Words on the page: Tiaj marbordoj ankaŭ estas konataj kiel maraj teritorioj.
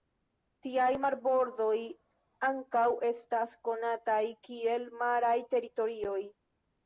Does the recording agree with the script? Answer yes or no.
yes